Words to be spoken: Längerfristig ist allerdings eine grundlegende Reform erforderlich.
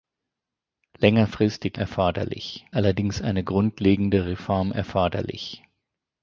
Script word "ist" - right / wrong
wrong